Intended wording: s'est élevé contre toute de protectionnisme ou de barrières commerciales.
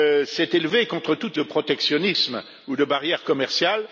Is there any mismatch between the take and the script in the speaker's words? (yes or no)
no